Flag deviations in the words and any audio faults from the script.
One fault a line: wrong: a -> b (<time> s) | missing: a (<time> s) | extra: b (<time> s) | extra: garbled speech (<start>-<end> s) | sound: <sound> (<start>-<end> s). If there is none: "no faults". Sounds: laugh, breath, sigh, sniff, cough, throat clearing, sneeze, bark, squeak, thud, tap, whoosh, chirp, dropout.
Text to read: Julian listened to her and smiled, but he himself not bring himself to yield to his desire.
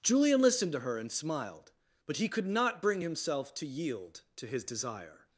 wrong: himself -> could (2.3 s)